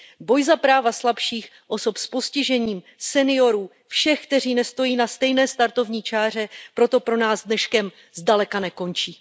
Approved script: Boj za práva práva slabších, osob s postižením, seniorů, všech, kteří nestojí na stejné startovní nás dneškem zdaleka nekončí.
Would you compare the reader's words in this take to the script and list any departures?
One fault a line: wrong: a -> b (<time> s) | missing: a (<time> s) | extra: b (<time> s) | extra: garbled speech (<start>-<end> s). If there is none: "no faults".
missing: práva (0.9 s)
extra: čáře proto pro (6.0 s)